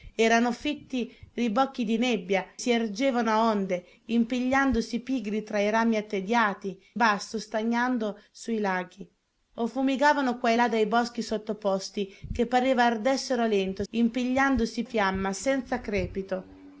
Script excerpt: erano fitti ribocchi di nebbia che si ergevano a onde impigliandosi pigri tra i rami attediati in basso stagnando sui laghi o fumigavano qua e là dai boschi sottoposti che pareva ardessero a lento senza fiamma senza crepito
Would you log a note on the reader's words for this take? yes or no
yes